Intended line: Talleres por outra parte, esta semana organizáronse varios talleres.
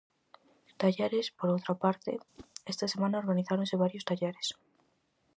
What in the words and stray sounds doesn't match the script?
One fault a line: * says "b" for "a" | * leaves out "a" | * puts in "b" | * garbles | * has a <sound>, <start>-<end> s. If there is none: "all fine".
* has a whoosh, 2.3-2.5 s